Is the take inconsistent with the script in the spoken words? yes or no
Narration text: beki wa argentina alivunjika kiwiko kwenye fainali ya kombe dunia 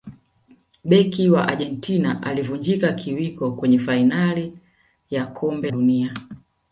no